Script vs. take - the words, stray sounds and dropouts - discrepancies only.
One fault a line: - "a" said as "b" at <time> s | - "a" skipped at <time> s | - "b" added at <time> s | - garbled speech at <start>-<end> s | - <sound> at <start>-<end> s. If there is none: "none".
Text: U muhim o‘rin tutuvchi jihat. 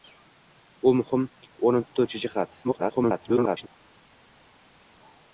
- garbled speech at 2.6-3.7 s